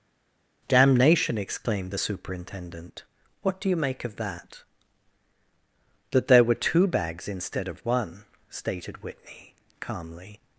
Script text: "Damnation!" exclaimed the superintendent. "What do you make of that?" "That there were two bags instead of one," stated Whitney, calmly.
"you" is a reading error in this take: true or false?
false